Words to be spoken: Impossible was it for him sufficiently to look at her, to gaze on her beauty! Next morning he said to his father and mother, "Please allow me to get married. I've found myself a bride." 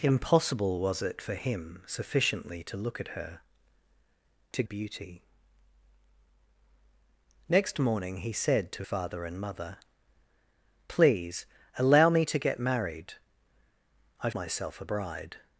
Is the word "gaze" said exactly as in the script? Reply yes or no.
no